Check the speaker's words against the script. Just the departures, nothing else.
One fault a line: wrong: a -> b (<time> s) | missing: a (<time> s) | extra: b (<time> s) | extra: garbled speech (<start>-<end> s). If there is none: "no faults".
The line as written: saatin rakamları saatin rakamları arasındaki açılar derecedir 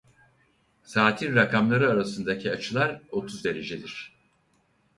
missing: saatin rakamları (1.9 s)
extra: otuz (3.1 s)